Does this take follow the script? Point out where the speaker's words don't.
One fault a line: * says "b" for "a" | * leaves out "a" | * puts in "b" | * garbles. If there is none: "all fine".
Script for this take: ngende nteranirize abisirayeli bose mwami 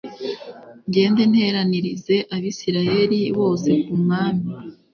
* puts in "ku"